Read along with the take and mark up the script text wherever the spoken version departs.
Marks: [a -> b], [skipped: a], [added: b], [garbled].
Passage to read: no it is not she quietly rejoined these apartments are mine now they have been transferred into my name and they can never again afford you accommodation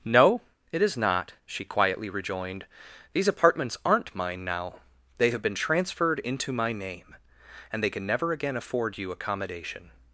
no it is not she quietly rejoined these apartments [are -> aren't] mine now they have been transferred into my name and they can never again afford you accommodation